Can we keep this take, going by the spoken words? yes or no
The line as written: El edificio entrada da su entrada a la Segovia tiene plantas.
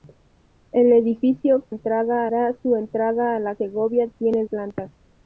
yes